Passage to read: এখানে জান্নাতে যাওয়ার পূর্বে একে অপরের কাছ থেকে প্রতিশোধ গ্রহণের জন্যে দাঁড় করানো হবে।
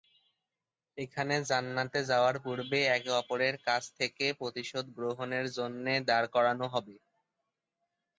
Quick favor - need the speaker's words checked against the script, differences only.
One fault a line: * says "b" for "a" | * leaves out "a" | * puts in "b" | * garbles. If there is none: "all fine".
all fine